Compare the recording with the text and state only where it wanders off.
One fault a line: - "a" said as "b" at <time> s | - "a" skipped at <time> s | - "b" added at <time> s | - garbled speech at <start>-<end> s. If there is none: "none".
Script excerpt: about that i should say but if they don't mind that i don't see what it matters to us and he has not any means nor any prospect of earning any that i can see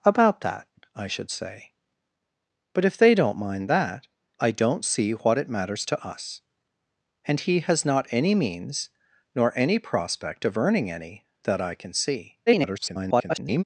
- garbled speech at 12.5-13.6 s